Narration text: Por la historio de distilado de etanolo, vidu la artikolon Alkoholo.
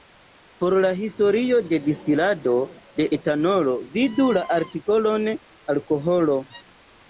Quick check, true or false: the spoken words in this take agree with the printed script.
true